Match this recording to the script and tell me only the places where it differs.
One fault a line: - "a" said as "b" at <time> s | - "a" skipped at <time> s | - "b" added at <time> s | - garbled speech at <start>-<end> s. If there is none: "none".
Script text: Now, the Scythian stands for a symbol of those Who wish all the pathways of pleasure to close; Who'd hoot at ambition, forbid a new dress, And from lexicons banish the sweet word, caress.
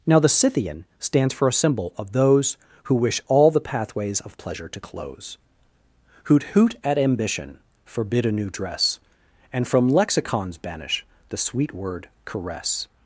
none